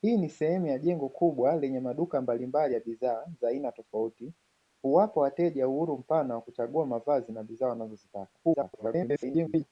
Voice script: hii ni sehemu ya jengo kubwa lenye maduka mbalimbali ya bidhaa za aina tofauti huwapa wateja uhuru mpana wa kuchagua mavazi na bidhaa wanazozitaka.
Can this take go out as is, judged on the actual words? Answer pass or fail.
fail